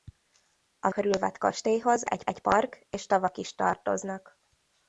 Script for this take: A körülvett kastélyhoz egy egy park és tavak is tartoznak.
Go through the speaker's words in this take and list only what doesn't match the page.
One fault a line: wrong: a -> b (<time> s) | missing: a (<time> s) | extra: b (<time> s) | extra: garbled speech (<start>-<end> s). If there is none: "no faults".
no faults